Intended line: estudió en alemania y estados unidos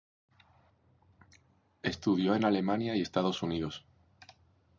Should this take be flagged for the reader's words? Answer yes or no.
no